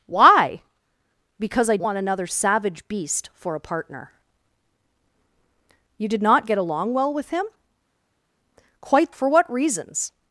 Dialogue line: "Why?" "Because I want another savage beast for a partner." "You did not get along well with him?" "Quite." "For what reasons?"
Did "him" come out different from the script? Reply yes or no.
no